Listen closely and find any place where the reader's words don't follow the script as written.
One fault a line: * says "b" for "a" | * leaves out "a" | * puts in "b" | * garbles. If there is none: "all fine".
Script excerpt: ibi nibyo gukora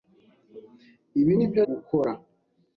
all fine